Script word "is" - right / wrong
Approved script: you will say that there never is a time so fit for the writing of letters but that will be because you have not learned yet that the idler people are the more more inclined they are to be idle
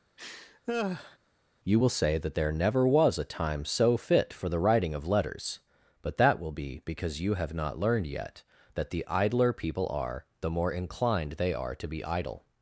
wrong